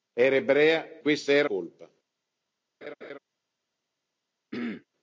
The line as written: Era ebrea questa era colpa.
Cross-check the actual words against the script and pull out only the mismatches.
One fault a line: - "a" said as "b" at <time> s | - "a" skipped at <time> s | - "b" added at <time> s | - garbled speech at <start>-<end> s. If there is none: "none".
none